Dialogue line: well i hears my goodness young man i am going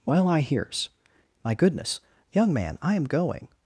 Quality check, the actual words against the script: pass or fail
pass